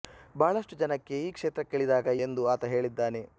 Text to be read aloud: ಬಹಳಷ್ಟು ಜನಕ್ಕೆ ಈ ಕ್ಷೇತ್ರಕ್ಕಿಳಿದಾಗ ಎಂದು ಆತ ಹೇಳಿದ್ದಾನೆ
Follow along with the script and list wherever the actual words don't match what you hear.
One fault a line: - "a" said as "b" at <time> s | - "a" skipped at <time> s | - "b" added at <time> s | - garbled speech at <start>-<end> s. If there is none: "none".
none